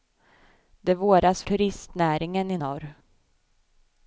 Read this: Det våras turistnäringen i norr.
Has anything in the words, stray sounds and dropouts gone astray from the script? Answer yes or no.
no